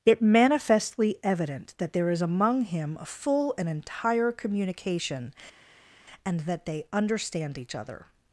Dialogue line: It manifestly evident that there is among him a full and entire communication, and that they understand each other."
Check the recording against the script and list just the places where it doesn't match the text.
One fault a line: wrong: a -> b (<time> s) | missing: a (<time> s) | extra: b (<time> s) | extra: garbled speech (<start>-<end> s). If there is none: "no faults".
no faults